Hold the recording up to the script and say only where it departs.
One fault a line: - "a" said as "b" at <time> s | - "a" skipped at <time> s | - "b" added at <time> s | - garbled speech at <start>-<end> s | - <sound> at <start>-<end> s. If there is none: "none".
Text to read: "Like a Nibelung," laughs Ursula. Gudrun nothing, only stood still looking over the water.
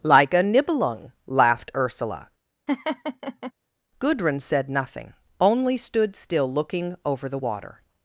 - "laughs" said as "laughed" at 1.3 s
- laugh at 2.7-3.5 s
- "said" added at 4.4 s